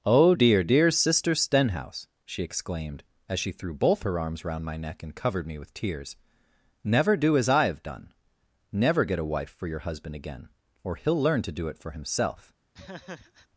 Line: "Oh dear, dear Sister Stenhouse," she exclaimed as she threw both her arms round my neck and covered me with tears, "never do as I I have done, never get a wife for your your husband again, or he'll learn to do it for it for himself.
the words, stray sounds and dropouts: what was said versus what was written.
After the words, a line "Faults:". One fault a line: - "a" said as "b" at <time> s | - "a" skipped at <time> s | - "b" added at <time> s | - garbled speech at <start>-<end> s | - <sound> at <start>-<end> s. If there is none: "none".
"Oh dear, dear Sister Stenhouse," she exclaimed as she threw both her arms round my neck and covered me with tears, "never do as I have done, never get a wife for your husband again, or he'll learn to do it for himself.
Faults:
- "I" skipped at 7.6 s
- "your" skipped at 9.8 s
- "it for" skipped at 11.9 s
- laugh at 12.7-13.5 s